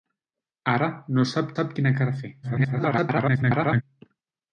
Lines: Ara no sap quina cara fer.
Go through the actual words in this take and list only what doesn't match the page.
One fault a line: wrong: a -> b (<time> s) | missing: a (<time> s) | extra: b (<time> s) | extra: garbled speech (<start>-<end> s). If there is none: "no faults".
extra: sap (1.5 s)
extra: garbled speech (2.4-3.8 s)